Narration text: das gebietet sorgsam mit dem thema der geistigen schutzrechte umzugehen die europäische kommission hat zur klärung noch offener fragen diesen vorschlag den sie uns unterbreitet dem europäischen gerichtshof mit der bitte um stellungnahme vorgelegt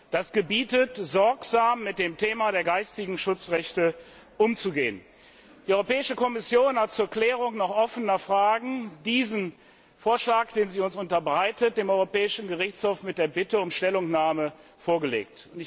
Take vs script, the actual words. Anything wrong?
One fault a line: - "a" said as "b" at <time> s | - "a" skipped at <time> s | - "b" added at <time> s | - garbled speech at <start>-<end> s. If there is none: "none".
none